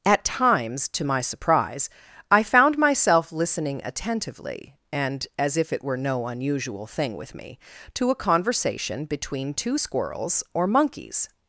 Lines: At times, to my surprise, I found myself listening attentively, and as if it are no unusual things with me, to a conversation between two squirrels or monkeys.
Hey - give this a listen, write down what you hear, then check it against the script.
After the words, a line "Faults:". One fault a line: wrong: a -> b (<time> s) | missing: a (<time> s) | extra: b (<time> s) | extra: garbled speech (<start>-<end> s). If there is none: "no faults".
At times, to my surprise, I found myself listening attentively, and as if it were no unusual thing with me, to a conversation between two squirrels or monkeys.
Faults:
wrong: are -> were (5.8 s)
wrong: things -> thing (6.9 s)